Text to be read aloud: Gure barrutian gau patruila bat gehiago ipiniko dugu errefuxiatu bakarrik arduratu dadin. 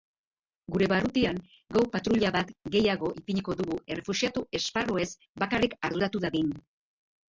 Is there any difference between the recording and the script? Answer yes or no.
yes